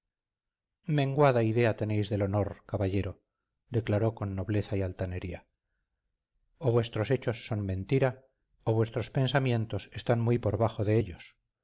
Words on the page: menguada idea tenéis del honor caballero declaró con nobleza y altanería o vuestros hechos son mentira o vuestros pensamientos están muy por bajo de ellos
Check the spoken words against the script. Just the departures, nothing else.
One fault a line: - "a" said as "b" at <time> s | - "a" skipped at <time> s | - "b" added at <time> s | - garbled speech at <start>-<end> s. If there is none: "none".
none